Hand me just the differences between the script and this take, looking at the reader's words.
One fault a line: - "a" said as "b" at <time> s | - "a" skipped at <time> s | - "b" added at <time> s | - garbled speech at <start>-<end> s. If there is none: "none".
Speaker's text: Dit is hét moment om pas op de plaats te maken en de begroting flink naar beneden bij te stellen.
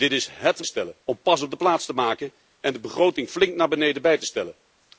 - "moment" said as "stellen" at 0.7 s